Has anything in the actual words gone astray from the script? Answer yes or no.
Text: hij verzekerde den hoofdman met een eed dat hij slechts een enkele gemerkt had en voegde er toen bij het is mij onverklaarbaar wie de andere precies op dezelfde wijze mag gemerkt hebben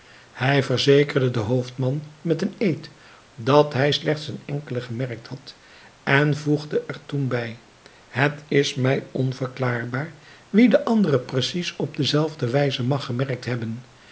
no